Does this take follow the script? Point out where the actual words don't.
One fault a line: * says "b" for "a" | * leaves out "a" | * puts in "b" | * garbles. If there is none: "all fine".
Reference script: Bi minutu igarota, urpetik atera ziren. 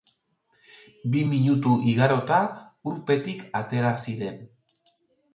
all fine